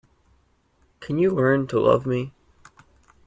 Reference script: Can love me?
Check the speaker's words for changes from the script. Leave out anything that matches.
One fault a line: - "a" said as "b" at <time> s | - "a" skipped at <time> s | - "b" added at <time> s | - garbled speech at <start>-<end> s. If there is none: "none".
- "you learn to" added at 1.2 s